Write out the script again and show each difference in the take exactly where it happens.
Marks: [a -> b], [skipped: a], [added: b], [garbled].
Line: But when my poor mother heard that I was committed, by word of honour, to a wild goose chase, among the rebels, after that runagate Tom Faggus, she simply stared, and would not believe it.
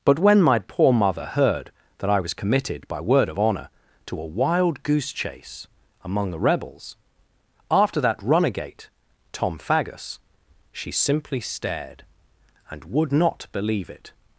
But when my poor mother heard that I was committed, by word of honour, to a wild goose chase, among the rebels, after that runagate Tom Faggus, she simply stared, and would not believe it.